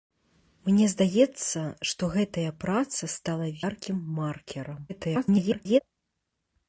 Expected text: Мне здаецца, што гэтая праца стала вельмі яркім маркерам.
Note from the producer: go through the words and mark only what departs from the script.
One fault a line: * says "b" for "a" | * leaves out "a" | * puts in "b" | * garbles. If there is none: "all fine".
* leaves out "вельмі"
* garbles